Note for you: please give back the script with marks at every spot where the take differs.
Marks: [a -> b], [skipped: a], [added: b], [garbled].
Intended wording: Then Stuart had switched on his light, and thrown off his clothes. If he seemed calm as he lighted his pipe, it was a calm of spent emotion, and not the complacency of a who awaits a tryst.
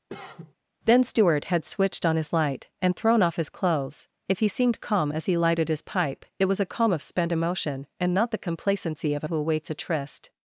Then Stuart had switched on his light, and thrown off his clothes. If he seemed calm as he lighted his pipe, it was a calm of spent emotion, and not the complacency of a who awaits a tryst.